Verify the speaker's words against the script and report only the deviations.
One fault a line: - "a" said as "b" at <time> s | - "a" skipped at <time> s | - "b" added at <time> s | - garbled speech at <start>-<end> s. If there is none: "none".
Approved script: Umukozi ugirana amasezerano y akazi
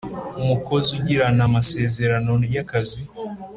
none